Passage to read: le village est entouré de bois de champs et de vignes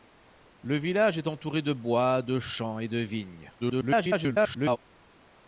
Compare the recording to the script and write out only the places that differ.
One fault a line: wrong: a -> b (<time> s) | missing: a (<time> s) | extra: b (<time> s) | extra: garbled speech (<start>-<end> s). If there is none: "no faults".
extra: garbled speech (3.6-4.8 s)